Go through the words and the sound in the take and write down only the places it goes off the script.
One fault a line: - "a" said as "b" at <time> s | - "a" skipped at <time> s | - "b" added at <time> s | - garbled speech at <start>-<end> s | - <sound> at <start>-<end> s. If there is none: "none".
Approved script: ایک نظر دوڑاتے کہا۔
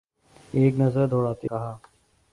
none